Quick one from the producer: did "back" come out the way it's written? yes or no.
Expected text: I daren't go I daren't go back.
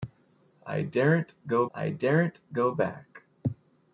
yes